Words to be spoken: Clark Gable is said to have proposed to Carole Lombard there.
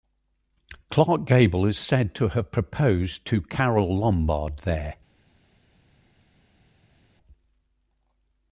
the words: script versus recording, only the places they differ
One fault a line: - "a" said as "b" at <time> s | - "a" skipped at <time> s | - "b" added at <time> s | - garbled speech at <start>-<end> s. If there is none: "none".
none